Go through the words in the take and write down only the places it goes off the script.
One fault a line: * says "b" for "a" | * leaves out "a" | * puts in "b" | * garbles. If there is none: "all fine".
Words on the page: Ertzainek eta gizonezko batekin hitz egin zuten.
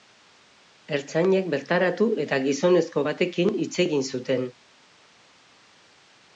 * puts in "bertaratu"